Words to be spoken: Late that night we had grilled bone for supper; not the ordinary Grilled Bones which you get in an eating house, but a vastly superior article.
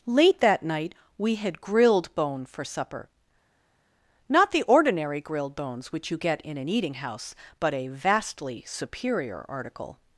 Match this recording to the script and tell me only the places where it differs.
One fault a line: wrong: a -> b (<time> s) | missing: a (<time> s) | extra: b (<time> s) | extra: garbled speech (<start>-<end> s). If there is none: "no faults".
no faults